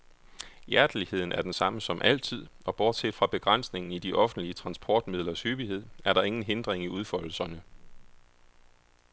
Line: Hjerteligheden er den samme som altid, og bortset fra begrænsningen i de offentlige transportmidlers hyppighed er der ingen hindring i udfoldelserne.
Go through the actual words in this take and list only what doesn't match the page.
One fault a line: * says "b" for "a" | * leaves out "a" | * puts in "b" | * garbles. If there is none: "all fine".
all fine